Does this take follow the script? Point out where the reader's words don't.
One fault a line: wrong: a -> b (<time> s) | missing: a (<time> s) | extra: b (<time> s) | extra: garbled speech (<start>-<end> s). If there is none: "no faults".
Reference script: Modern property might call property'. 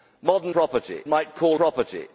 no faults